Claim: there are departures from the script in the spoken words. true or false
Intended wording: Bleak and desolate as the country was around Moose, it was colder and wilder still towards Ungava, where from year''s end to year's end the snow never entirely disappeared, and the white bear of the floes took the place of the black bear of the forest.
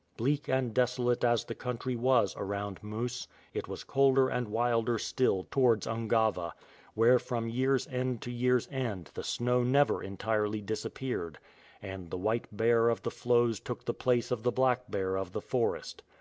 false